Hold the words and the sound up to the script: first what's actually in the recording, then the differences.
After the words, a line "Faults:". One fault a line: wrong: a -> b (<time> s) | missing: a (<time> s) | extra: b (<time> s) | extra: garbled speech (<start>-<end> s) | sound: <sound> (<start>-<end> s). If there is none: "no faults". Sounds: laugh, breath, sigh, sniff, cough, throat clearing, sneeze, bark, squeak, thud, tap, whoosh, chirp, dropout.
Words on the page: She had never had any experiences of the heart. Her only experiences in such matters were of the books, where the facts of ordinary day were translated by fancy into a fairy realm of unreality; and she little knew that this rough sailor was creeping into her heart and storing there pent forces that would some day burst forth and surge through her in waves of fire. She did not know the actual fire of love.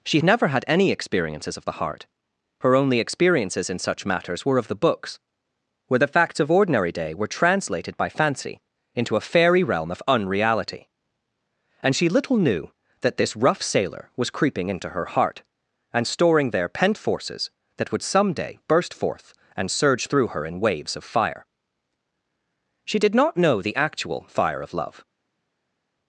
She never had any experiences of the heart. Her only experiences in such matters were of the books, where the facts of ordinary day were translated by fancy into a fairy realm of unreality; and she little knew that this rough sailor was creeping into her heart and storing there pent forces that would some day burst forth and surge through her in waves of fire. She did not know the actual fire of love.
Faults:
missing: had (0.2 s)